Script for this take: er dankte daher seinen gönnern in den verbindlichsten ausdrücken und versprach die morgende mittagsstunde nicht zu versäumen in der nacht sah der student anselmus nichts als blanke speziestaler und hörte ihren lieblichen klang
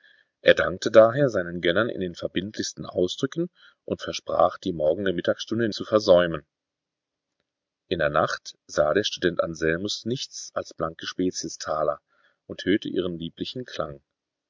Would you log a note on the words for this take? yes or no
yes